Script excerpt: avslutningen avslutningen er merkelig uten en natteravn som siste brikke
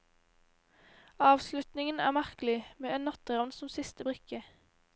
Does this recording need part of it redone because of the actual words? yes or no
yes